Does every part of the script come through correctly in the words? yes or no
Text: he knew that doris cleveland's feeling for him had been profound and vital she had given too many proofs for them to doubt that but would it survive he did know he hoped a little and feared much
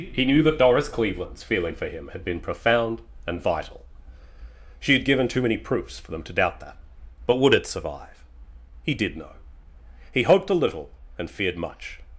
yes